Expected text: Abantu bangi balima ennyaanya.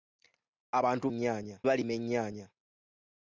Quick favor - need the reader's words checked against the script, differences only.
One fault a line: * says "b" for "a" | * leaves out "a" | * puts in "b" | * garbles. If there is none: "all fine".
* says "ennyaanya" for "bangi"